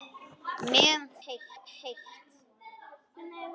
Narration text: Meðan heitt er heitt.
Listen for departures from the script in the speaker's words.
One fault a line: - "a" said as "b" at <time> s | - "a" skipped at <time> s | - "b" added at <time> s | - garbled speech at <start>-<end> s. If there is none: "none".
none